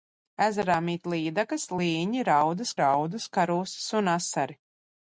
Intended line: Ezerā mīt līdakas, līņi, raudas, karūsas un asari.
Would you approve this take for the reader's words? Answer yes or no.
no